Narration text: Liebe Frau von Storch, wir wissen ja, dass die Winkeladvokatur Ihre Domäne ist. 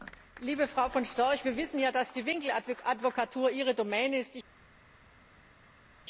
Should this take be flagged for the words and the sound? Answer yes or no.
no